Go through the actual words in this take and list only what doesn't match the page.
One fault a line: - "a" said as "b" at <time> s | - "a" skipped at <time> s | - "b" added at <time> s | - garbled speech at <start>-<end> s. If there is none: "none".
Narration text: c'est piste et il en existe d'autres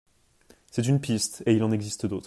- "une" added at 0.9 s